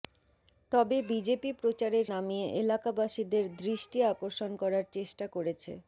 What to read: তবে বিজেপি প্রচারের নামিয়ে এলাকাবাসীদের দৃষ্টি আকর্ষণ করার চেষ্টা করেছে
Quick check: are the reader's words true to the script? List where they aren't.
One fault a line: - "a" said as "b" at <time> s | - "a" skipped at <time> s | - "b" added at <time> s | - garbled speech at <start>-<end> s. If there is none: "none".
none